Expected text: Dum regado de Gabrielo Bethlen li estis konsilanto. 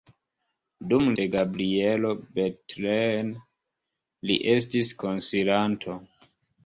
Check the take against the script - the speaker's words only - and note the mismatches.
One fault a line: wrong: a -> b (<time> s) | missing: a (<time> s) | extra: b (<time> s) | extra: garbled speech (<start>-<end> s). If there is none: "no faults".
missing: regado (1.1 s)